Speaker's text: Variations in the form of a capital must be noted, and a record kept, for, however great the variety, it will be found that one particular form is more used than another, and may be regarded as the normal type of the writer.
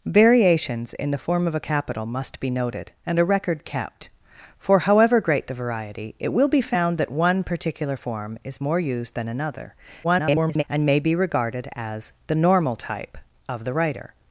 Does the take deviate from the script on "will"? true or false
false